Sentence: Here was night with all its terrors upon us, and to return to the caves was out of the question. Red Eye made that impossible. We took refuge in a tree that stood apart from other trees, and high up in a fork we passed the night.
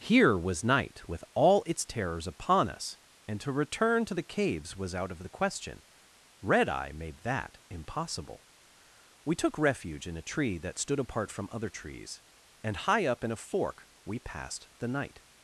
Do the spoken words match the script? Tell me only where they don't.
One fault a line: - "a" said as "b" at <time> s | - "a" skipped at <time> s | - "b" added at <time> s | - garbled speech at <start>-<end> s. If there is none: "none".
none